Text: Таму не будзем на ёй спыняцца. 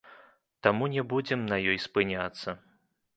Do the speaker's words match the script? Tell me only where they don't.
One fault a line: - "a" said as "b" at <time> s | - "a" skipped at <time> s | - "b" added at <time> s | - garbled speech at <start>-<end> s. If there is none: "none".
none